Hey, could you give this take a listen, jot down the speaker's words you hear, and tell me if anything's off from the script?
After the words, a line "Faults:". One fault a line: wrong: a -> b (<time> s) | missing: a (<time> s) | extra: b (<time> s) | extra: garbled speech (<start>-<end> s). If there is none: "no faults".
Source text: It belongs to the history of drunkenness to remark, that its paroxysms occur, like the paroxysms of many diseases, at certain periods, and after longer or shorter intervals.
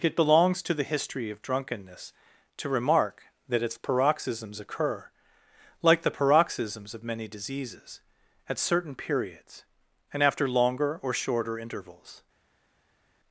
It belongs to the history of drunkenness to remark, that its paroxysms occur, like the paroxysms of many diseases, at certain periods, and after longer or shorter intervals.
Faults:
no faults